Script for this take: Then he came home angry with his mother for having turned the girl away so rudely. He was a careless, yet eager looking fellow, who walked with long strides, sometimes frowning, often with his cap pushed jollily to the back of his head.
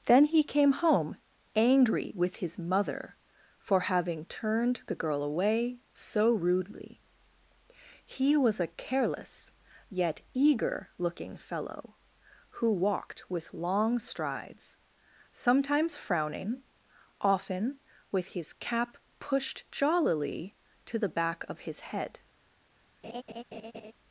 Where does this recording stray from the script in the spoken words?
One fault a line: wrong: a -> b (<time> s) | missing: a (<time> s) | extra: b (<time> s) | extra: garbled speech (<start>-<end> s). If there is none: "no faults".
no faults